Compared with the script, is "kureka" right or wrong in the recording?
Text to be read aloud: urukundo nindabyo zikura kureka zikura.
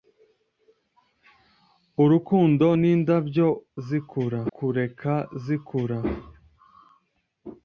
right